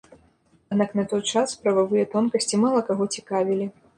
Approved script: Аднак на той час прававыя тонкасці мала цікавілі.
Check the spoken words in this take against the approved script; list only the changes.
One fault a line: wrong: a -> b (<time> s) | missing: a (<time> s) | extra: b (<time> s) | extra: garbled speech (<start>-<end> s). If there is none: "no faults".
extra: каго (2.9 s)